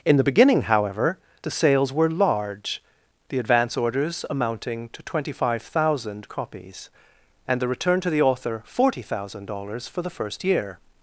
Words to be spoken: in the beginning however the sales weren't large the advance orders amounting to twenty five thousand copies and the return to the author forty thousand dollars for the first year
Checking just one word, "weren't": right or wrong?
wrong